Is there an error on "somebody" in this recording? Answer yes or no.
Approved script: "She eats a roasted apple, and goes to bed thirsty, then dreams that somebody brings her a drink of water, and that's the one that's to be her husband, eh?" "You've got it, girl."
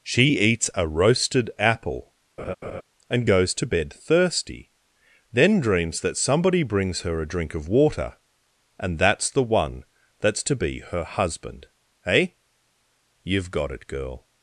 no